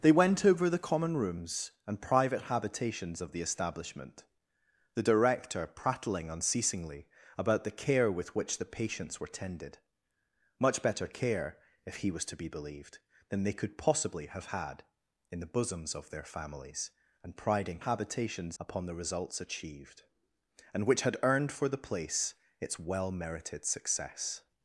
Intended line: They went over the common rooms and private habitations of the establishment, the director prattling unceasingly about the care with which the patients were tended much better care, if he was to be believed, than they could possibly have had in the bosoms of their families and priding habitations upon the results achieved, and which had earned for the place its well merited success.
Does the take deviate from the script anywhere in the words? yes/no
no